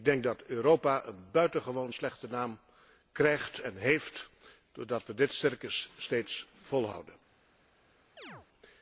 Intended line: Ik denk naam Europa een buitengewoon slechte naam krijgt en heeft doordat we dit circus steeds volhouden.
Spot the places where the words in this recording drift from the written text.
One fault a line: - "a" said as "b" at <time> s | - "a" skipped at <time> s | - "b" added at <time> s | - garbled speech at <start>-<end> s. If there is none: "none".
- "naam" said as "dat" at 0.2 s